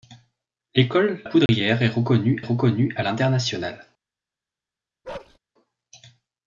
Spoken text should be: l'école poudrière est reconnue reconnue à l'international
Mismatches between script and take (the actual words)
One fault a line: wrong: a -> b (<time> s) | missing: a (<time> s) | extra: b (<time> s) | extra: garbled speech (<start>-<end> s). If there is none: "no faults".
no faults